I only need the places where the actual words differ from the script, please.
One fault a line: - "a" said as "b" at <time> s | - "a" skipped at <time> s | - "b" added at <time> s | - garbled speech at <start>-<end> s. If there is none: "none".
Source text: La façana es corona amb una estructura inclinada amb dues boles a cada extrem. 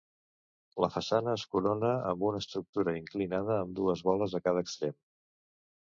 none